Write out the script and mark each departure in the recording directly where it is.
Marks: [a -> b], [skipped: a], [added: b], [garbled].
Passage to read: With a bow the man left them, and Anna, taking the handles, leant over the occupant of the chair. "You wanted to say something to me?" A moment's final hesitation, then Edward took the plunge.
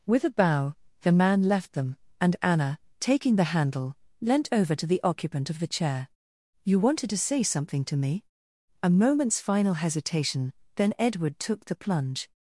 With a bow the man left them, and Anna, taking the [handles, -> handle] leant over [added: to] the occupant of the chair. "You wanted to say something to me?" A moment's final hesitation, then Edward took the plunge.